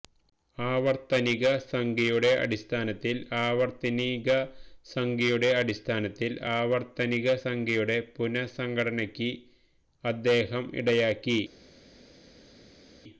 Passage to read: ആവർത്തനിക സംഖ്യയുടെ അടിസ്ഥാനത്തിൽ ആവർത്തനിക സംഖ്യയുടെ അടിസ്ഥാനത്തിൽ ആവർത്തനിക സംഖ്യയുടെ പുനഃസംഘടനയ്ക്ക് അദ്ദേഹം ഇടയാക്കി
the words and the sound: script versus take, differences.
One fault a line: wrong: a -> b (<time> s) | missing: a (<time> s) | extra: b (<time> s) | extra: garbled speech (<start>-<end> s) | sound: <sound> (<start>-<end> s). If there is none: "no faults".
no faults